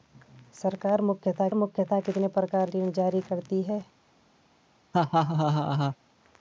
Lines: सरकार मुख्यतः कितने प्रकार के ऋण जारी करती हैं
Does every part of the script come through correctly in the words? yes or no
no